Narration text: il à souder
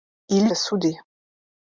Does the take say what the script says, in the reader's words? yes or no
yes